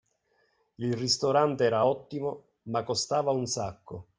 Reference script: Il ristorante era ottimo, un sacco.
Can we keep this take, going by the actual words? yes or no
no